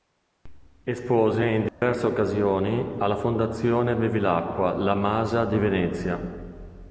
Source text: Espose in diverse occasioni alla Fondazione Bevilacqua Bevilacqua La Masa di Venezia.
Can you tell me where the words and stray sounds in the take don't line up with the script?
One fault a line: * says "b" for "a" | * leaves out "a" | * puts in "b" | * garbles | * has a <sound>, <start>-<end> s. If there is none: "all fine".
* has a dropout, 1.7-1.8 s
* leaves out "Bevilacqua"